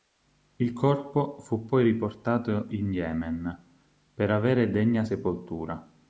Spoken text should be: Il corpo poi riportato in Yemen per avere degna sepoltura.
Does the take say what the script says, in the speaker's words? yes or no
no